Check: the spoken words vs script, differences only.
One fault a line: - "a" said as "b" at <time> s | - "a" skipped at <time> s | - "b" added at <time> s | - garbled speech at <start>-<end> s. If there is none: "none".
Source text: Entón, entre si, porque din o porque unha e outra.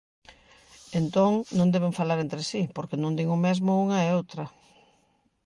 - "non deben falar" added at 1.6 s
- "non" added at 3.0 s
- "porque" said as "mesmo" at 3.5 s